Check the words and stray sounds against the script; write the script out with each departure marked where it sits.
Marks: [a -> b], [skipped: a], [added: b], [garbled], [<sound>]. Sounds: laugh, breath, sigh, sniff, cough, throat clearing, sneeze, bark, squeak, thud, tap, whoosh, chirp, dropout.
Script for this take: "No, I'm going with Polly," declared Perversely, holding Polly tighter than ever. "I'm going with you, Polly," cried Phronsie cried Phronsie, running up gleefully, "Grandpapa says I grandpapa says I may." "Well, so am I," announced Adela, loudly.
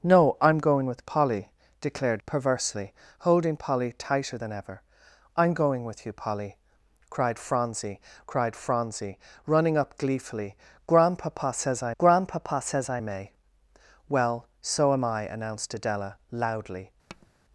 "No, I'm going with Polly," declared Perversely, holding Polly tighter than ever. "I'm going with you, Polly," cried Phronsie cried Phronsie, running up gleefully, "Grandpapa says I grandpapa says I may." "Well, so am I," announced Adela, loudly. [tap]